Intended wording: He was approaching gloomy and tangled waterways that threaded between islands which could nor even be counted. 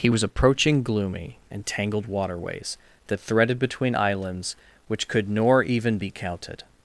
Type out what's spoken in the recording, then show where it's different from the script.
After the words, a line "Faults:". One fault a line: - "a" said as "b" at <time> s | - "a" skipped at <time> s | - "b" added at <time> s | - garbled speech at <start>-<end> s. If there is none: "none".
He was approaching gloomy and tangled waterways that threaded between islands which could nor even be counted.
Faults:
none